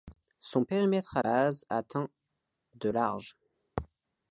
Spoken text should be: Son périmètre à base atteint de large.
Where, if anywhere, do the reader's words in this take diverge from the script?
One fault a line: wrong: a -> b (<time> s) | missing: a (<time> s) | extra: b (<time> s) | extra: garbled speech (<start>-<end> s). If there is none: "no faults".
no faults